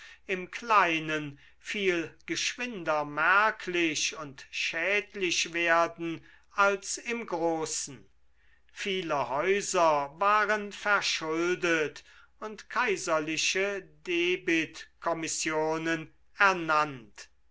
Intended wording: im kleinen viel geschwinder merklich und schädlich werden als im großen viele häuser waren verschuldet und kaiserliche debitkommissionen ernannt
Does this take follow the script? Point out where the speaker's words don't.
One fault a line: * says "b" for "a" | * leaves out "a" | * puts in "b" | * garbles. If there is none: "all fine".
all fine